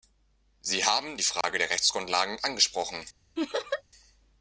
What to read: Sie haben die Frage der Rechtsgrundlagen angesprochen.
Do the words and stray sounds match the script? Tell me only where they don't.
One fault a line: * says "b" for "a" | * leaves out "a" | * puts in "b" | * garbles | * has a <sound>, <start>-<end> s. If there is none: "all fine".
* has a dropout, 1.4-1.4 s
* has a laugh, 3.4-3.8 s